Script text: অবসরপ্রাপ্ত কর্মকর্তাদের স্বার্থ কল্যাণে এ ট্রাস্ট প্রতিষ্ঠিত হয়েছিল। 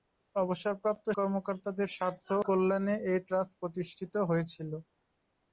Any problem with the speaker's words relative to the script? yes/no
no